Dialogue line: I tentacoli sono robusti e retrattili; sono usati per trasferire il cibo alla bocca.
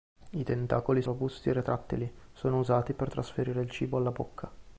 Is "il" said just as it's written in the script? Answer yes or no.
yes